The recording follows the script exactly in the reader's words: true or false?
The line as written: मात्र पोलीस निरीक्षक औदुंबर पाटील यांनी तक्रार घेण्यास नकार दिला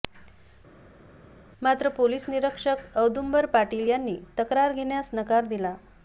true